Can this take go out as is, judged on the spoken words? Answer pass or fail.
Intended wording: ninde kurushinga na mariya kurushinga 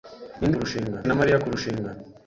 pass